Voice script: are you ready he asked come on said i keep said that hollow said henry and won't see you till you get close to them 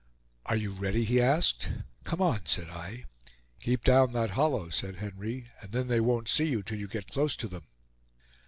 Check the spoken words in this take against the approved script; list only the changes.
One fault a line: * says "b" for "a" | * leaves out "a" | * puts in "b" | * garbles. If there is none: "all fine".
* says "down" for "said"
* puts in "then they"